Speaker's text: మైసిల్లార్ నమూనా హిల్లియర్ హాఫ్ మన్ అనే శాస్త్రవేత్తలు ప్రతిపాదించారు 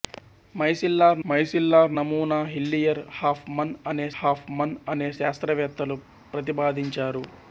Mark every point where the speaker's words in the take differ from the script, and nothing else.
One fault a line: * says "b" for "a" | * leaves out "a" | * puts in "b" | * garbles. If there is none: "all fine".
* puts in "మైసిల్లార్"
* puts in "హాఫ్ మన్ అనే"